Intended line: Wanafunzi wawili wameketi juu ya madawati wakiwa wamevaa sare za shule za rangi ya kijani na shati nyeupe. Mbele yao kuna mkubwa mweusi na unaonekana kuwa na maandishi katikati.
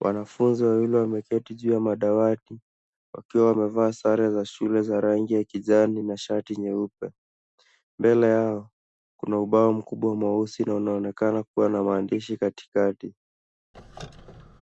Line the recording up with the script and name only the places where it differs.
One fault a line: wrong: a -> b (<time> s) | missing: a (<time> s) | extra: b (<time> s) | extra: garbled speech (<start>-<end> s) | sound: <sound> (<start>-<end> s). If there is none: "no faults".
extra: ubao (9.4 s)
sound: squeak (13.7-14.6 s)